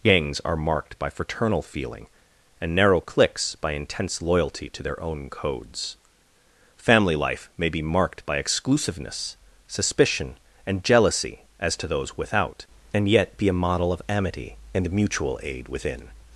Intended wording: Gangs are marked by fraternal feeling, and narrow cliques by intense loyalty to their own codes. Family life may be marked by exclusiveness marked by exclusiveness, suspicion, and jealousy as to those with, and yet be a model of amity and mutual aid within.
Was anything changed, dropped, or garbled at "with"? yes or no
yes